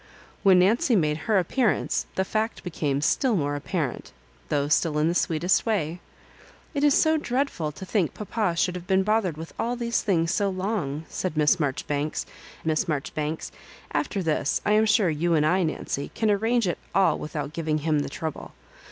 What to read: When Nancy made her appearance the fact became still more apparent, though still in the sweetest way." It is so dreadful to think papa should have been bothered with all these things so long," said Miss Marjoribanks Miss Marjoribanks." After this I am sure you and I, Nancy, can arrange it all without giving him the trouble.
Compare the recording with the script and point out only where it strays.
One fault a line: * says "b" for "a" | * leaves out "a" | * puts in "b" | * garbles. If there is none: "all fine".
all fine